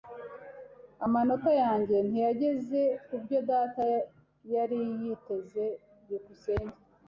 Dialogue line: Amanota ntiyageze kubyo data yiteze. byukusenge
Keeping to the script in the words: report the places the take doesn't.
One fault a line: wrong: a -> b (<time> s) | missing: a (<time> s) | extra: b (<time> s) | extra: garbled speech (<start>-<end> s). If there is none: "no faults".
extra: yanjye (1.6 s)
extra: yari (4.5 s)